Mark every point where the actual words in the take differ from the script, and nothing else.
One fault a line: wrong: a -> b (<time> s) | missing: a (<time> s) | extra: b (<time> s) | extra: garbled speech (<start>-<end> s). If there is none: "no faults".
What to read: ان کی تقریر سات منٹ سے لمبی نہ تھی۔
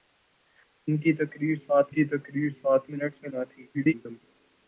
extra: کی تقریر سات (1.9 s)
missing: لمبی (3.3 s)
extra: garbled speech (3.7-4.2 s)